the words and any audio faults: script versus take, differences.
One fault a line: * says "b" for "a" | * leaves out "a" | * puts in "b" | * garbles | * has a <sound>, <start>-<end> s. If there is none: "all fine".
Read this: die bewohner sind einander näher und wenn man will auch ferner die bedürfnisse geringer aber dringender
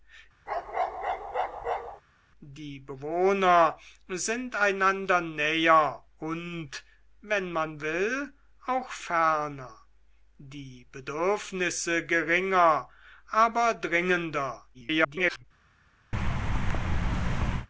* has a bark, 0.5-2.0 s
* garbles
* has a thud, 16.1-17.7 s